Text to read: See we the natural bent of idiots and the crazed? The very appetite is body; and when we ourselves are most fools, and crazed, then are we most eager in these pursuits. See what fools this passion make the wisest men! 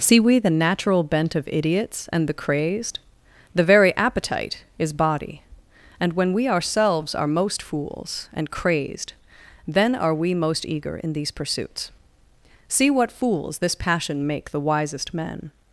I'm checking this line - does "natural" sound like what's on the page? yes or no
yes